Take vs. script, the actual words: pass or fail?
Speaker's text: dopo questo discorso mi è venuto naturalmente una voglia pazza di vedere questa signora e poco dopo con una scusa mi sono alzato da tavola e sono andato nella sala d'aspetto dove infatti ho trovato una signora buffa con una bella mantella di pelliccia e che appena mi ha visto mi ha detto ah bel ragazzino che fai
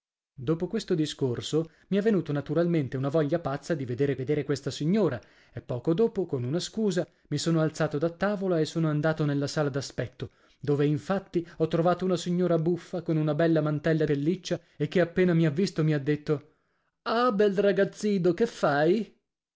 fail